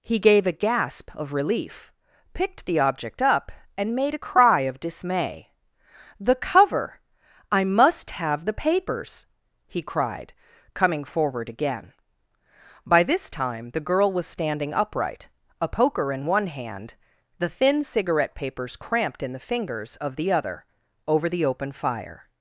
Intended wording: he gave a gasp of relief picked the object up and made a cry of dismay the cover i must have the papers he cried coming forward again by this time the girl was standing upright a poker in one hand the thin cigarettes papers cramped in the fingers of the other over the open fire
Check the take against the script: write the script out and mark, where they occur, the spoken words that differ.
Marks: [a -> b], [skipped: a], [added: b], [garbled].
he gave a gasp of relief picked the object up and made a cry of dismay the cover i must have the papers he cried coming forward again by this time the girl was standing upright a poker in one hand the thin [cigarettes -> cigarette] papers cramped in the fingers of the other over the open fire